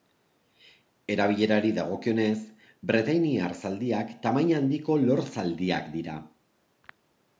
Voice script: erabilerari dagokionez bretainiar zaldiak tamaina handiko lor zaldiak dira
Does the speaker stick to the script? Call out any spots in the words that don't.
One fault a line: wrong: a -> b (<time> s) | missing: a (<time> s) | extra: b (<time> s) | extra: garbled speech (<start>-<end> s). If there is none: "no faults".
no faults